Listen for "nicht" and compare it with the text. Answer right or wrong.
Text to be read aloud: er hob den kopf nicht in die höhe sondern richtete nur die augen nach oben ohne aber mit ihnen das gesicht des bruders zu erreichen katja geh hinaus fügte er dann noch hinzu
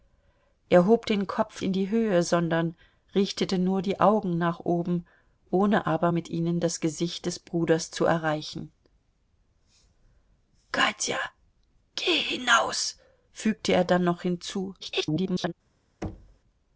wrong